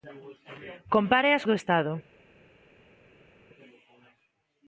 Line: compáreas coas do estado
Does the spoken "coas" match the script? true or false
false